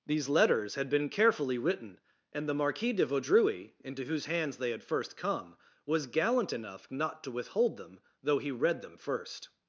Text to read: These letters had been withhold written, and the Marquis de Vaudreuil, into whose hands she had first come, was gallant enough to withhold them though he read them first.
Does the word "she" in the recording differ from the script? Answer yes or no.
yes